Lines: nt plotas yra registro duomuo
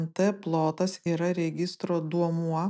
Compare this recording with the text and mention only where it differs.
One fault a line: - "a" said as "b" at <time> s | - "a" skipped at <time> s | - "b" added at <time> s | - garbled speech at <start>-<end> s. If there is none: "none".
none